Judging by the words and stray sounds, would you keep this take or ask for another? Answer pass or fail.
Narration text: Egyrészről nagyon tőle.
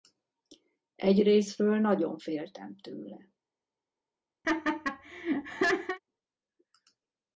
fail